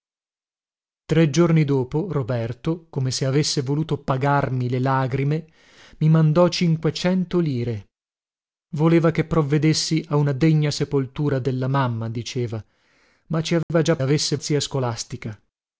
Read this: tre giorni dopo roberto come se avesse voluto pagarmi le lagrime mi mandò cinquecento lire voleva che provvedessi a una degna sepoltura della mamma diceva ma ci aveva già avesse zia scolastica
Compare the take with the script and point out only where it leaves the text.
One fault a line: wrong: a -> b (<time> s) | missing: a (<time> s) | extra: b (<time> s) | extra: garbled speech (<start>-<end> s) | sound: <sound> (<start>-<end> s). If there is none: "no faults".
sound: dropout (13.6-13.7 s)